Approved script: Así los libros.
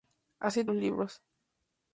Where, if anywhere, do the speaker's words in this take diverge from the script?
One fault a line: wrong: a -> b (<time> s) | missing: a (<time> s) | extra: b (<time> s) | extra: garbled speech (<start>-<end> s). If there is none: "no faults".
no faults